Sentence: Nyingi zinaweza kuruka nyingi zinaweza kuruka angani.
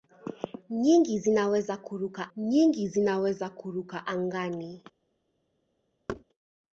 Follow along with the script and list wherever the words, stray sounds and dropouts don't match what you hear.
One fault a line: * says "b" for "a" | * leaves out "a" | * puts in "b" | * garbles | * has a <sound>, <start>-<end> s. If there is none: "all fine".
* has a thud, 6.1-6.2 s